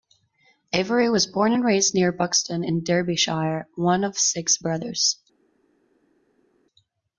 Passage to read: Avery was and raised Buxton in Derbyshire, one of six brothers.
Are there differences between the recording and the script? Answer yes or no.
yes